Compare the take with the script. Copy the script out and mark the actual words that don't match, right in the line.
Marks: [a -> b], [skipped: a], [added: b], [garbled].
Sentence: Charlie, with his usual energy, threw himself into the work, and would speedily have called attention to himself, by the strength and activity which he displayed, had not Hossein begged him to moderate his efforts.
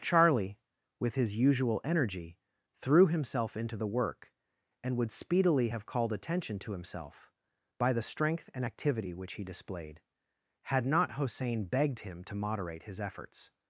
Charlie, with his usual energy, threw himself into the work, and would speedily have called attention to himself, by the strength and activity which he displayed, had not Hossein begged him to moderate his efforts.